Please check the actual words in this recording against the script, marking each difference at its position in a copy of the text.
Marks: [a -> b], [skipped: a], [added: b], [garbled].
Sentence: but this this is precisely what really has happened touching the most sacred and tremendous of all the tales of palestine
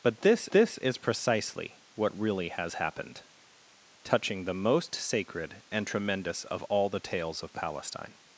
but this this is precisely what really has happened touching the most sacred and tremendous of all the tales of palestine